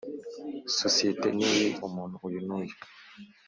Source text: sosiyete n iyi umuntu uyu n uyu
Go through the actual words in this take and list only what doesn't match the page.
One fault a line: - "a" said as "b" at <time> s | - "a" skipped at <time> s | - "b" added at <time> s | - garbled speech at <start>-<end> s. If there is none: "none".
none